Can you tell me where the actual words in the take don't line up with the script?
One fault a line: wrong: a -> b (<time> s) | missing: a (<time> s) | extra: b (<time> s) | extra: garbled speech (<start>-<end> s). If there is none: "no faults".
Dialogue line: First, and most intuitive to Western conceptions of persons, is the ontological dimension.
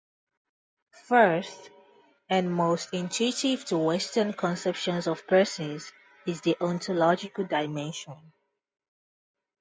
no faults